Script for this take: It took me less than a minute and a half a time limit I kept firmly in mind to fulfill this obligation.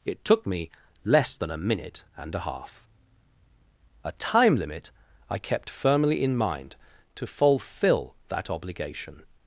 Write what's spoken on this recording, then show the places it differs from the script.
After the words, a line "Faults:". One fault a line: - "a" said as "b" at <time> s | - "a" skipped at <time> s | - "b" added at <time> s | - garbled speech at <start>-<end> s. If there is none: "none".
It took me less than a minute and a half a time limit I kept firmly in mind to fulfill that obligation.
Faults:
- "this" said as "that" at 8.3 s